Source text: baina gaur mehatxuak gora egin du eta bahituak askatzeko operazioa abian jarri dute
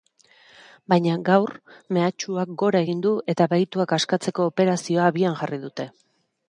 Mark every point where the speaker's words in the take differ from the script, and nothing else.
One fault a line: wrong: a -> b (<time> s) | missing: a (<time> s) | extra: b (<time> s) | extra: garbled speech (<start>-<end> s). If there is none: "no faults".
no faults